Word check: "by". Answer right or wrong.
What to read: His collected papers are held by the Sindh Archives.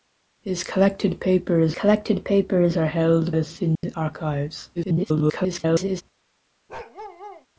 wrong